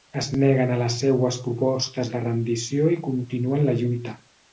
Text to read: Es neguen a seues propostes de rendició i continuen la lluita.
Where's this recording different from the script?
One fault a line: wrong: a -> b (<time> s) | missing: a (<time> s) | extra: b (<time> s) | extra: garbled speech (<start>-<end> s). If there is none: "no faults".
extra: les (0.8 s)